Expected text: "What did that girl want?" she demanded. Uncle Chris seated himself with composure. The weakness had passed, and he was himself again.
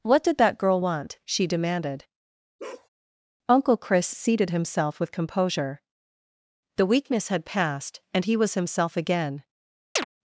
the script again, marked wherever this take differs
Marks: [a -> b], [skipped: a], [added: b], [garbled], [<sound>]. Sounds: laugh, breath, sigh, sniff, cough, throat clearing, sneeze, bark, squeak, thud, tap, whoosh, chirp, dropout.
"What did that girl want?" she demanded. [bark] Uncle Chris seated himself with composure. The weakness had passed, and he was himself again. [chirp]